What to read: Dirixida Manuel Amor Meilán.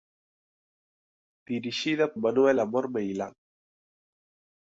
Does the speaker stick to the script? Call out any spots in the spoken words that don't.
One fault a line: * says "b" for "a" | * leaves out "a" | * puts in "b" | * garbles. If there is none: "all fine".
all fine